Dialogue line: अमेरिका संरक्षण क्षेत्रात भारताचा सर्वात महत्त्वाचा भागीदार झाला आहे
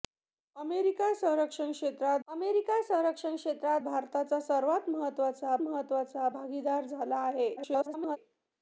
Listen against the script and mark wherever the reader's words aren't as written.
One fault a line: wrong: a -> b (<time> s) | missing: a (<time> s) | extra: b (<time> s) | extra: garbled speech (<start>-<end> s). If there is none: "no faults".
extra: अमेरिका संरक्षण क्षेत्रात (2.3 s)
extra: महत्त्वाचा (5.6 s)
extra: garbled speech (7.6-8.2 s)